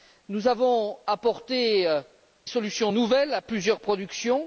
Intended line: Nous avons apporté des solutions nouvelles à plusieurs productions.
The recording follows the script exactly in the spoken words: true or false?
false